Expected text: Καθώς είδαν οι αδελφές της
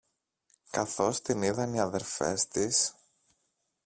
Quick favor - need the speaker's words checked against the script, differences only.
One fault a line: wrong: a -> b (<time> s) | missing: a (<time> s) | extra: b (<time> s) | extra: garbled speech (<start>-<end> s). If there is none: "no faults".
extra: την (1.2 s)